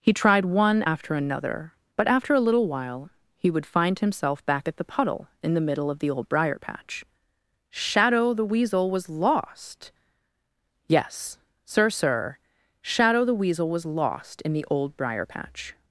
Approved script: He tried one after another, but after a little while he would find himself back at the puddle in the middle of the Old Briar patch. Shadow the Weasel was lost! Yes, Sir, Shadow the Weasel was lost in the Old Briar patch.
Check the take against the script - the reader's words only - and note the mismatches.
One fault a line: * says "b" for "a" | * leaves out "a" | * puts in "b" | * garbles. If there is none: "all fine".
* puts in "Sir"